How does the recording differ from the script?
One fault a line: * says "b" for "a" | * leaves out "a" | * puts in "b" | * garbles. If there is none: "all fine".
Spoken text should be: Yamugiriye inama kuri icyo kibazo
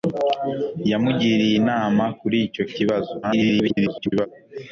* garbles